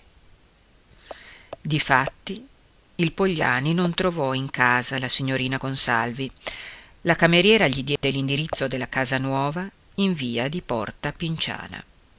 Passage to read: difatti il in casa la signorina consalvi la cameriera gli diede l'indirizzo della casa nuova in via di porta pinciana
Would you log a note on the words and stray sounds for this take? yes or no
yes